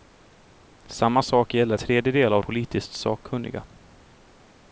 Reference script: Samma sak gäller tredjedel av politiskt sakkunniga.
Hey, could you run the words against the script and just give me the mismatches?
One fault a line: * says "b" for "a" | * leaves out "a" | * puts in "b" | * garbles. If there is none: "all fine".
all fine